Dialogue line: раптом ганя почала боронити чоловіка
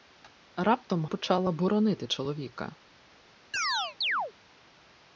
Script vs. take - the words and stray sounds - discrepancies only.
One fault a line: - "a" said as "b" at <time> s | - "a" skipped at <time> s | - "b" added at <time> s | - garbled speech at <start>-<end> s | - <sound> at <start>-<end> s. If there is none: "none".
- "ганя" skipped at 1.1 s
- chirp at 3.5-4.3 s